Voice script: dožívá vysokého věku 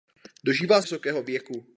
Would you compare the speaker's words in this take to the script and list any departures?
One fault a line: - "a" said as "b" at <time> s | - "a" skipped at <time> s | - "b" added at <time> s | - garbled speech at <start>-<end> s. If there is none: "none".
none